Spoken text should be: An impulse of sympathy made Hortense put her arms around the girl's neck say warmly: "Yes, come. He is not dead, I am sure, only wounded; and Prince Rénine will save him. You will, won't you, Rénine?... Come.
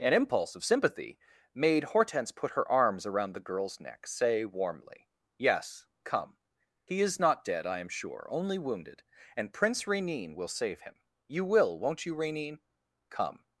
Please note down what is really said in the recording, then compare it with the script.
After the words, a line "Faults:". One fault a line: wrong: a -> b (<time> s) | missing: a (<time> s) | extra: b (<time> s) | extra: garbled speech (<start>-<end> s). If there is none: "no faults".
An impulse of sympathy made Hortense put her arms around the girl's neck say warmly: "Yes, come. He is not dead, I am sure, only wounded; and Prince Rénine will save him. You will, won't you, Rénine?... Come.
Faults:
no faults